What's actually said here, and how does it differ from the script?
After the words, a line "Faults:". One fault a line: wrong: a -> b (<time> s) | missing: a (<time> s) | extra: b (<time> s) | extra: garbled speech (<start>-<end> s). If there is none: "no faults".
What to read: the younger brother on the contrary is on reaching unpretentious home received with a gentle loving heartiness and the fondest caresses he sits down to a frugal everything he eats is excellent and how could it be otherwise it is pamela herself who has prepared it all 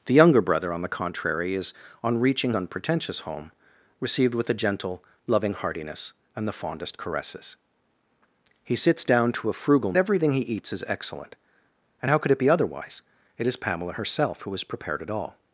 the younger brother on the contrary is on reaching unpretentious home received with a gentle loving heartiness and the fondest caresses he sits down to a frugal everything he eats is excellent and how could it be otherwise it is pamela herself who has prepared it all
Faults:
no faults